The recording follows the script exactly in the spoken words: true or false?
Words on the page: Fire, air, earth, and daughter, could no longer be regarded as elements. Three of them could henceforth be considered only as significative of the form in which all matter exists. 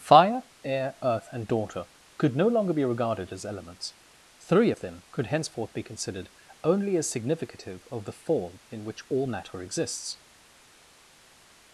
true